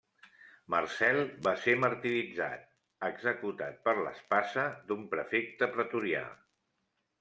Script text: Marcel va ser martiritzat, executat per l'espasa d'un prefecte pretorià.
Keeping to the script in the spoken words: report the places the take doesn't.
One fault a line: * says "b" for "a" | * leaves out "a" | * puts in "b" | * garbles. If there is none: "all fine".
all fine